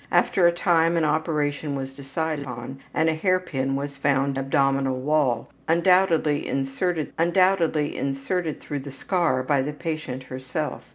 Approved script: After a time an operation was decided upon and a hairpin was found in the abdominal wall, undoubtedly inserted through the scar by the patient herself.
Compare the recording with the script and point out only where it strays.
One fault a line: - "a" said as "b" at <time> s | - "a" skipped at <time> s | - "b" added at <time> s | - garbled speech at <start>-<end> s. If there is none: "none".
- "in the abdominal wall" said as "abdominal wall undoubtedly inserted" at 4.4 s